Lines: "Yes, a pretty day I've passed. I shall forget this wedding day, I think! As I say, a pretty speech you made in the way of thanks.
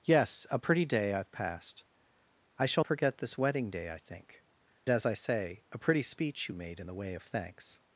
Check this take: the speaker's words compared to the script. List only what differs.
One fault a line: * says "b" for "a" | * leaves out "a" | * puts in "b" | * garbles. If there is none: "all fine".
all fine